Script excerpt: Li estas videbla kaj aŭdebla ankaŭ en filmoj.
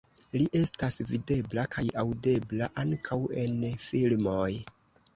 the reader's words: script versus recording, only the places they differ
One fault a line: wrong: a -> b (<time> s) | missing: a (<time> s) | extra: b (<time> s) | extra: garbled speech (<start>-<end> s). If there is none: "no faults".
no faults